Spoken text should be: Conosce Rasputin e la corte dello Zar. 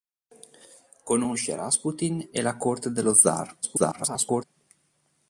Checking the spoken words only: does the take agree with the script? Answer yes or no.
no